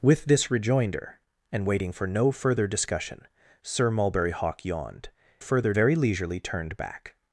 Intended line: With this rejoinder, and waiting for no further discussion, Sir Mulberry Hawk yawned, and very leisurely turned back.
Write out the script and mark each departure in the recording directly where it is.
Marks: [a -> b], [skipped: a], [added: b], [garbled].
With this rejoinder, and waiting for no further discussion, Sir Mulberry Hawk yawned, [and -> further] very leisurely turned back.